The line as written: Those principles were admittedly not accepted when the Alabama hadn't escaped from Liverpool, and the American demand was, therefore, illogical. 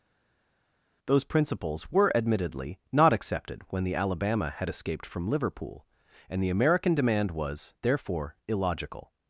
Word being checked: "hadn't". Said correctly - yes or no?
no